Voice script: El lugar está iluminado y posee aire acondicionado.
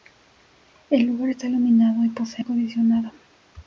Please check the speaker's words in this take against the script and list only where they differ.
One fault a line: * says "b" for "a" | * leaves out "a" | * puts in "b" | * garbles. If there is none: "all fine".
* leaves out "aire"